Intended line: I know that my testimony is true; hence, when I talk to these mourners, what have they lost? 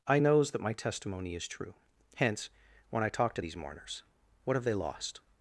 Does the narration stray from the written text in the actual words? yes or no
yes